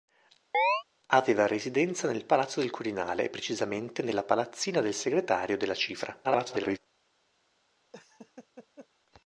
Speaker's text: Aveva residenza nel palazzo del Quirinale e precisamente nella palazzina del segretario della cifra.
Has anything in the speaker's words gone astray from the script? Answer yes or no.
yes